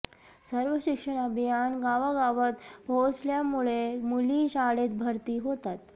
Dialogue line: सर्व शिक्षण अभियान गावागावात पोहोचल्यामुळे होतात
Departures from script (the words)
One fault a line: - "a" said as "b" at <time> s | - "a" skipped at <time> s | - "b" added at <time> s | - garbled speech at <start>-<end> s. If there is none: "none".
- "मुली शाळेत भरती" added at 4.0 s